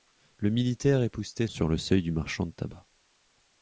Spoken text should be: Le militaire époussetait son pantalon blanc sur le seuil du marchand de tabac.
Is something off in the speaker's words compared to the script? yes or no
yes